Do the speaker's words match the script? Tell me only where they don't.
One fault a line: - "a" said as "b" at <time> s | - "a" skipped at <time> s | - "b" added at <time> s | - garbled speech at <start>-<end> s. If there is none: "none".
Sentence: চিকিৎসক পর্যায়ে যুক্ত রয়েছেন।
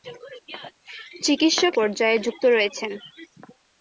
none